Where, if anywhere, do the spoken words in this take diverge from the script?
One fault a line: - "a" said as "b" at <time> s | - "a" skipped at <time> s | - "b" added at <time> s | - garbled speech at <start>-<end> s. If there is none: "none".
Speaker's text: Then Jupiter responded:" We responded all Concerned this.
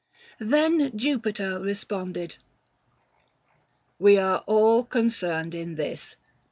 - "responded" said as "are" at 4.2 s
- "in" added at 5.5 s